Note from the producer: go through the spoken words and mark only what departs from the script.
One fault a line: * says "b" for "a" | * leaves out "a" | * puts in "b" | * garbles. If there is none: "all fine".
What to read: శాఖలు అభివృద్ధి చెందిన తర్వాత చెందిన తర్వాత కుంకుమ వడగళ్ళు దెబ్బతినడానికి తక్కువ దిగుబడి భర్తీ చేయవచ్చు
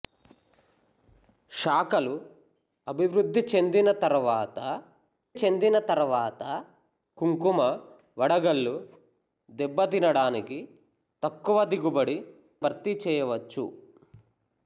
all fine